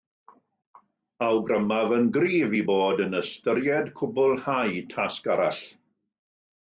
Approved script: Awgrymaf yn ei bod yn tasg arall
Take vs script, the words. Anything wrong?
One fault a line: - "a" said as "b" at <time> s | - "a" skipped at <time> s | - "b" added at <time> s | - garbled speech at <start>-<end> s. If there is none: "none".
- "gryf" added at 2.2 s
- "ystyried cwblhau" added at 3.2 s